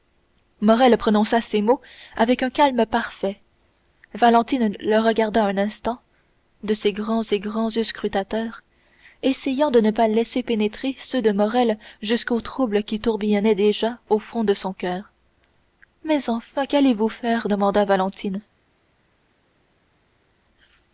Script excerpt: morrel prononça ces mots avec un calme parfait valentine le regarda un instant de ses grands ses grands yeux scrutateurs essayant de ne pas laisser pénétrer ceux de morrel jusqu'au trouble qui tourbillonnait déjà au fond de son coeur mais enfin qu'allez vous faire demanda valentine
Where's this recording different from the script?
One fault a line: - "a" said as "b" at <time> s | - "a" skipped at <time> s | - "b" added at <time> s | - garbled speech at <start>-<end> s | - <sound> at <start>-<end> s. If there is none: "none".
none